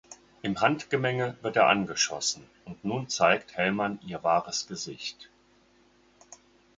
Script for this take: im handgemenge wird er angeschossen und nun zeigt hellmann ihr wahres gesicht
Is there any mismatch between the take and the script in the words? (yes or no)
no